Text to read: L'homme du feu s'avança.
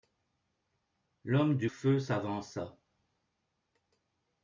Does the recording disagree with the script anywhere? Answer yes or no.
no